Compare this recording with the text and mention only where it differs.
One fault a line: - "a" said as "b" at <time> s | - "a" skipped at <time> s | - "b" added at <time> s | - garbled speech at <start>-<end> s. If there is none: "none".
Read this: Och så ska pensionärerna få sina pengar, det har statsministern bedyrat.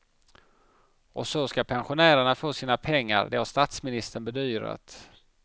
none